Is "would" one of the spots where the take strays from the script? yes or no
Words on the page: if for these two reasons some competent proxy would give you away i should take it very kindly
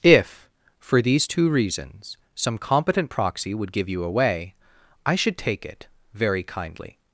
no